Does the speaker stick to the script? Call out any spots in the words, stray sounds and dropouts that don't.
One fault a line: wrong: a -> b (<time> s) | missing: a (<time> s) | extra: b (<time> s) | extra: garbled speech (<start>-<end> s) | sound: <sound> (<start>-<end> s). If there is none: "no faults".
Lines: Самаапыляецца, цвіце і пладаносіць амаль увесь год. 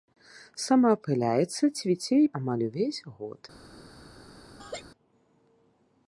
missing: пладаносіць (2.3 s)
sound: laugh (4.6-4.8 s)